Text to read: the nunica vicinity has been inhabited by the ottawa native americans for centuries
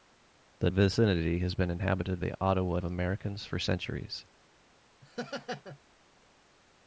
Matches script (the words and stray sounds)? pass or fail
fail